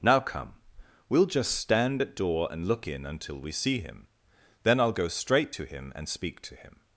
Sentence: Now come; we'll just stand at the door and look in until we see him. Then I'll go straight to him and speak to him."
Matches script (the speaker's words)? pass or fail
fail